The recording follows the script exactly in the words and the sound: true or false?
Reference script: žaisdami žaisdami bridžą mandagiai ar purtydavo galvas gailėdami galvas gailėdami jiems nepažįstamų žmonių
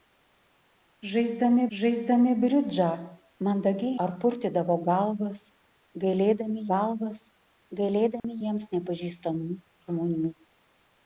false